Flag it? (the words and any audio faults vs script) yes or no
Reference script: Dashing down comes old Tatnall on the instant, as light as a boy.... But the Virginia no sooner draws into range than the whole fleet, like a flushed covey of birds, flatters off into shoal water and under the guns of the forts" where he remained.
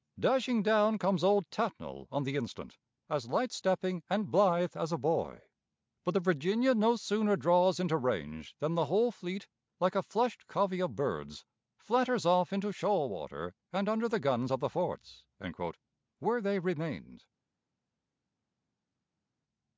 yes